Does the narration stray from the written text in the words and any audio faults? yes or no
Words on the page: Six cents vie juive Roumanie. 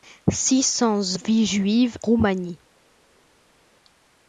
no